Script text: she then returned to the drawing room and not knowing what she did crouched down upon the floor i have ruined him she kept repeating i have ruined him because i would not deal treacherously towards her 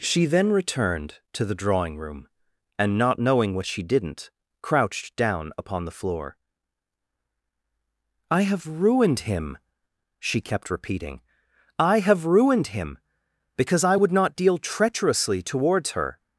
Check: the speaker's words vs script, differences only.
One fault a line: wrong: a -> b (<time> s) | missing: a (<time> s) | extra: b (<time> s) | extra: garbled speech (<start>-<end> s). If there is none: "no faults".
wrong: did -> didn't (3.8 s)